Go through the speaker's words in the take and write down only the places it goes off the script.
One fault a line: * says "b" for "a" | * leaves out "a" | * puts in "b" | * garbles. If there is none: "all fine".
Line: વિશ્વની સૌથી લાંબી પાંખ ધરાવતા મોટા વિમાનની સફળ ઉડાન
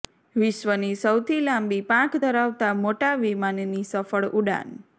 all fine